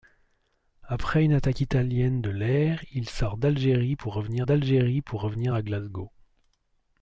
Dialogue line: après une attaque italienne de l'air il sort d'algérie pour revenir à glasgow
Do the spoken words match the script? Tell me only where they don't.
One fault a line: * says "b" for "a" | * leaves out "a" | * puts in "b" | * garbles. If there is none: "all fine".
* puts in "d'algérie pour revenir"